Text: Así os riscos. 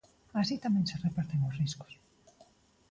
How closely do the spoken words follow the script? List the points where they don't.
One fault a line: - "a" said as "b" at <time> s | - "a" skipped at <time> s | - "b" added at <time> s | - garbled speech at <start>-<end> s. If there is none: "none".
- "tamén se reparten" added at 0.7 s